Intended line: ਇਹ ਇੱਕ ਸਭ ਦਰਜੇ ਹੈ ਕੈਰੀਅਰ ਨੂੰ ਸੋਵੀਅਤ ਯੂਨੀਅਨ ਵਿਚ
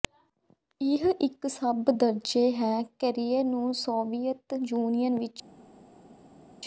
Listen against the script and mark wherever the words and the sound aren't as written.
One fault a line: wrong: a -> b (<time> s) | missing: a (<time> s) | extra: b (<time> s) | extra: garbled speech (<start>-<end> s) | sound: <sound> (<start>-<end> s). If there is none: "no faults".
no faults